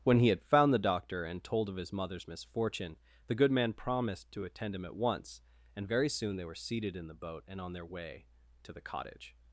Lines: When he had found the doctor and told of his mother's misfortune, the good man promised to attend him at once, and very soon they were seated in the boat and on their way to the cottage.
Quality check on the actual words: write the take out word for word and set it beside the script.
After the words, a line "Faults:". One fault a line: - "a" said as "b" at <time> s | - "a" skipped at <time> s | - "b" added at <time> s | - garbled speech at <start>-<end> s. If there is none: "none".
When he had found the doctor and told of his mother's misfortune, the good man promised to attend him at once, and very soon they were seated in the boat and on their way to the cottage.
Faults:
none